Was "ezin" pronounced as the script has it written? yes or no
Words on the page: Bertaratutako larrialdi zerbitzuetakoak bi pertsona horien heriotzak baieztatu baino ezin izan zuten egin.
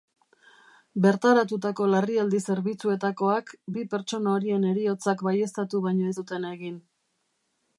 no